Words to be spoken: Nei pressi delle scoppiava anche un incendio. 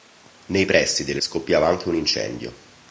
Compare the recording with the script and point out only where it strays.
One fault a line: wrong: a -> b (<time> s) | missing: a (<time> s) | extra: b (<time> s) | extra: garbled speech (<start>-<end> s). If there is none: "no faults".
no faults